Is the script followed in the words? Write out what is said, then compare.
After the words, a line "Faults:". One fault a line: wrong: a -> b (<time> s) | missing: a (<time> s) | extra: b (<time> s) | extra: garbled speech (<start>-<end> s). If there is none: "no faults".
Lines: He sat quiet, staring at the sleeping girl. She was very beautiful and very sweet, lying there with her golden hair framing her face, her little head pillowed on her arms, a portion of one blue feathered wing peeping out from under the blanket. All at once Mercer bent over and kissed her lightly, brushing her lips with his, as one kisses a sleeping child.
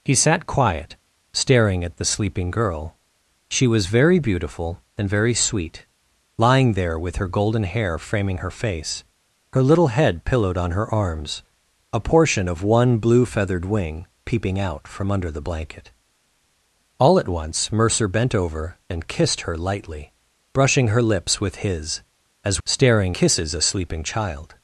He sat quiet, staring at the sleeping girl. She was very beautiful and very sweet, lying there with her golden hair framing her face, her little head pillowed on her arms, a portion of one blue feathered wing peeping out from under the blanket. All at once Mercer bent over and kissed her lightly, brushing her lips with his, as staring kisses a sleeping child.
Faults:
wrong: one -> staring (22.7 s)